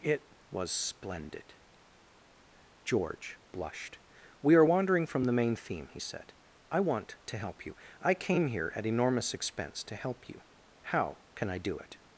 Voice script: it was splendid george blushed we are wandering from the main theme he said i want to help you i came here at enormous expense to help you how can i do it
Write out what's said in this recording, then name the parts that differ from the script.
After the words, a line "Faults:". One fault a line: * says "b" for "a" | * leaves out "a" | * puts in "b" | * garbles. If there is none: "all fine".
it was splendid george blushed we are wandering from the main theme he said i want to help you i came here at enormous expense to help you how can i do it
Faults:
all fine